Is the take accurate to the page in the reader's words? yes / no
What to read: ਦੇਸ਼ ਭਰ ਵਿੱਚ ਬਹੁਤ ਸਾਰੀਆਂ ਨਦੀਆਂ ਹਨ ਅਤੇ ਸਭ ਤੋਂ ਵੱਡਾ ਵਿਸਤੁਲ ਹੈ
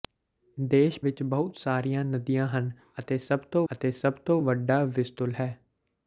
no